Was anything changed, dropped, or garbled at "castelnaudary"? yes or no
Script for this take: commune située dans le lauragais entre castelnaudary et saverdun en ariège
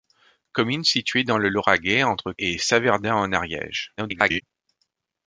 yes